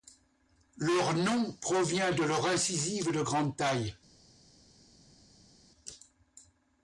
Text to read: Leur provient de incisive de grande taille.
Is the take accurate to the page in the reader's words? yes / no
no